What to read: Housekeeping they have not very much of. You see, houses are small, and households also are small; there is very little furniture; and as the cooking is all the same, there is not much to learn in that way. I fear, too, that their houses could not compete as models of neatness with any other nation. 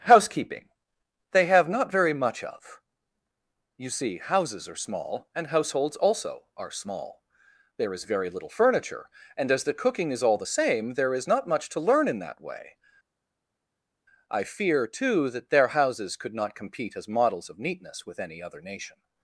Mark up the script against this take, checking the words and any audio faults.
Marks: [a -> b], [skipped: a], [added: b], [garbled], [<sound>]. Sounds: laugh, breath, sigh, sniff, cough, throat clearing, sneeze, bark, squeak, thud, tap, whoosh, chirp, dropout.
Housekeeping they have not very much of. You see, houses are small, and households also are small; there is very little furniture; and as the cooking is all the same, there is not much to learn in that way. I fear, too, that their houses could not compete as models of neatness with any other nation.